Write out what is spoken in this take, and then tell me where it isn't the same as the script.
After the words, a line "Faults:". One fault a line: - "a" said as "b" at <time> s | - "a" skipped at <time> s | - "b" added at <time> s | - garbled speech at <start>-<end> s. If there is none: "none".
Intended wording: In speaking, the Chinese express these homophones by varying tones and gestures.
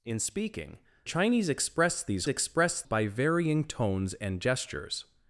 In speaking, Chinese express these express by varying tones and gestures.
Faults:
- "the" skipped at 0.8 s
- "homophones" said as "express" at 2.3 s